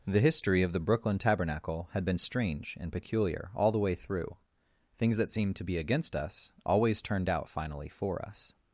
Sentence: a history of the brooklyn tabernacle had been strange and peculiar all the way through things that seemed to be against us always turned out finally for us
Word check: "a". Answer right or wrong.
wrong